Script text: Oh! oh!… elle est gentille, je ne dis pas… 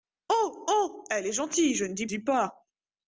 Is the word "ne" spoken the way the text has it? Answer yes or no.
yes